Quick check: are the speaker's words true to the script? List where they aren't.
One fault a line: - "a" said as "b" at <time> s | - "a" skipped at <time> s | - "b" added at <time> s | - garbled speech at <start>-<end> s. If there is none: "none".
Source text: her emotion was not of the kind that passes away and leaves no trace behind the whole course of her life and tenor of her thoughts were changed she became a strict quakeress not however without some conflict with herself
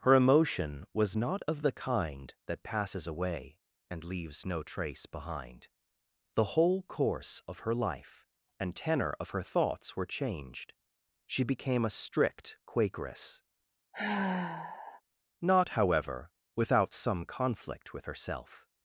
none